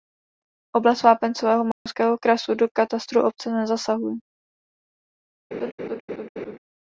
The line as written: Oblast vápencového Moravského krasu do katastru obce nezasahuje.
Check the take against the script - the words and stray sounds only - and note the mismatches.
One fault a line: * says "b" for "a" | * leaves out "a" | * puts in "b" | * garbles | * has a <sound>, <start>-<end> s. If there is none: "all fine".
* has a dropout, 1.7-1.9 s
* has a laugh, 5.5-6.6 s